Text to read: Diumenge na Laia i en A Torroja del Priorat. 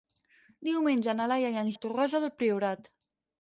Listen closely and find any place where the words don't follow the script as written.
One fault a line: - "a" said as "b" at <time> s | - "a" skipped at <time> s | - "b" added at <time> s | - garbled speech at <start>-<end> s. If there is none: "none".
none